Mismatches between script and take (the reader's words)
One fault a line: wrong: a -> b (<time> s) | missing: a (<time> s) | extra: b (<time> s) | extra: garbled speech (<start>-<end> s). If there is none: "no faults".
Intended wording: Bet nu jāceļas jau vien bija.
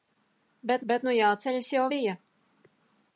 extra: bet (0.9 s)
missing: vien (1.9 s)